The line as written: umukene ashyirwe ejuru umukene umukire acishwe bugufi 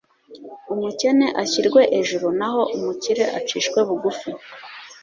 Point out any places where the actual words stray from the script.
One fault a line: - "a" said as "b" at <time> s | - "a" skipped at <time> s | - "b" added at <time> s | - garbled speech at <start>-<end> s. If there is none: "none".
- "umukene" said as "naho" at 2.4 s